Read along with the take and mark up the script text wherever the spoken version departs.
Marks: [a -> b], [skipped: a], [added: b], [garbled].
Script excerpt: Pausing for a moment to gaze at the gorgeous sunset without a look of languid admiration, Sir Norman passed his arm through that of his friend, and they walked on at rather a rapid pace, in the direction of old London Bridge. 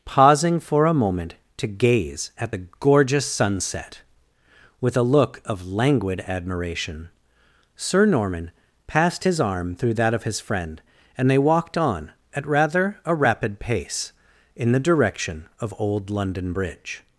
Pausing for a moment to gaze at the gorgeous sunset [without -> with] a look of languid admiration, Sir Norman passed his arm through that of his friend, and they walked on at rather a rapid pace, in the direction of old London Bridge.